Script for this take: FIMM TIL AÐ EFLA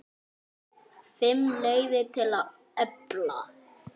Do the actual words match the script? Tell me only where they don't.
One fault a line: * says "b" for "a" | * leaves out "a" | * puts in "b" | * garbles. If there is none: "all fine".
* puts in "LEIÐIR"